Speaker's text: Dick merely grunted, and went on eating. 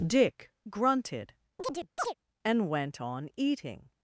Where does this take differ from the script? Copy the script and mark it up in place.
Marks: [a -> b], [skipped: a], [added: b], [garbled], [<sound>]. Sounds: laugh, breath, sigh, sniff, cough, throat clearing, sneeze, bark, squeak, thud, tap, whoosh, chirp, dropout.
Dick [skipped: merely] grunted, [chirp] and went on eating.